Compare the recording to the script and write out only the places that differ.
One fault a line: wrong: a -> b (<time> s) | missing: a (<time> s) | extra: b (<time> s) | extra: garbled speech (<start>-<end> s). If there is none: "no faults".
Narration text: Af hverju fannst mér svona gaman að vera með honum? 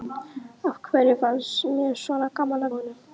missing: vera með (2.7 s)